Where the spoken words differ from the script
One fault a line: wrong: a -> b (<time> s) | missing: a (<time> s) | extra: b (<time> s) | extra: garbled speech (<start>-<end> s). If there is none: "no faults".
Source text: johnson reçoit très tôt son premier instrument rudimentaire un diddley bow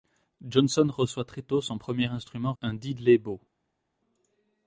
missing: rudimentaire (2.5 s)